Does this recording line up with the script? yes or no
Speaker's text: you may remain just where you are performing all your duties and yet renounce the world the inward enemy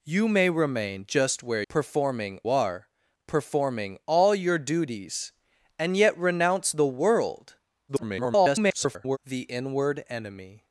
no